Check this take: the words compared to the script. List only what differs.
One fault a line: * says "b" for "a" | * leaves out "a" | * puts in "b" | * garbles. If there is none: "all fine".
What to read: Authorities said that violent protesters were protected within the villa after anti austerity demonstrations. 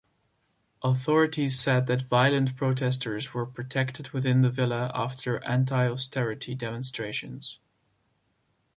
all fine